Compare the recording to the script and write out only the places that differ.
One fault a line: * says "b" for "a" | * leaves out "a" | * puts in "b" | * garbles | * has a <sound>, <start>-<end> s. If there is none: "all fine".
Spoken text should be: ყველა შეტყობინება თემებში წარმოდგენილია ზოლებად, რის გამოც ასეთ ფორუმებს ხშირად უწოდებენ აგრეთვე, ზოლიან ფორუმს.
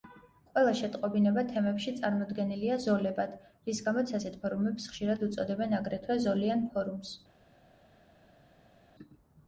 all fine